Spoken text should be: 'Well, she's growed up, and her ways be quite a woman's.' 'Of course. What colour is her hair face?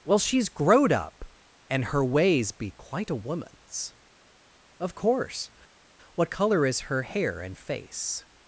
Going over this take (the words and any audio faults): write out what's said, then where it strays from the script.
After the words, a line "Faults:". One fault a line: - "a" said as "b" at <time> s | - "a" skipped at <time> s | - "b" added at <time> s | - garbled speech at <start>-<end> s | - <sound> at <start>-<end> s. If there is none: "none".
'Well, she's growed up, and her ways be quite a woman's.' 'Of course. What colour is her hair and face?
Faults:
- "and" added at 7.4 s